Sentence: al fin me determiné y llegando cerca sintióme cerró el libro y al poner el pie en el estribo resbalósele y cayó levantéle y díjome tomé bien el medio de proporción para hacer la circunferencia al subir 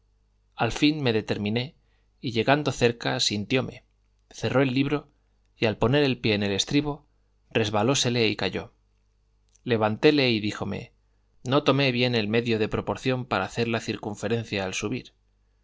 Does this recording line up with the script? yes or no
no